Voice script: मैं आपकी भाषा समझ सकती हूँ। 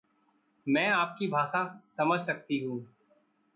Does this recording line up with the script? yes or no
yes